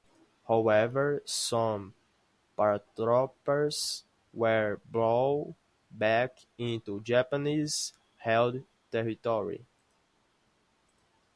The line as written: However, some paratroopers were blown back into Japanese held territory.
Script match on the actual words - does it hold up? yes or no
yes